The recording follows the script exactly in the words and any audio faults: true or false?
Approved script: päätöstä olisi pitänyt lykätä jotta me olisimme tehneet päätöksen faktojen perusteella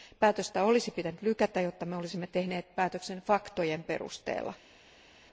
true